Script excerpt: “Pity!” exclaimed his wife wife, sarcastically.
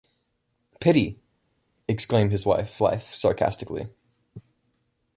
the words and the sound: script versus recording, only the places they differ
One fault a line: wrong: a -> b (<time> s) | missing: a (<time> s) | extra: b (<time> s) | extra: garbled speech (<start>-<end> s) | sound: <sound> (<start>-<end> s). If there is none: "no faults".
no faults